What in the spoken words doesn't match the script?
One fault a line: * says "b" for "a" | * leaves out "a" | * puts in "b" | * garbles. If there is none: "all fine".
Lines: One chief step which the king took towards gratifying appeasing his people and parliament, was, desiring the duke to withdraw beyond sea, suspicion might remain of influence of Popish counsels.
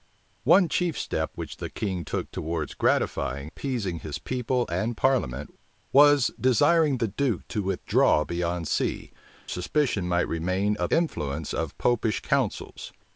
all fine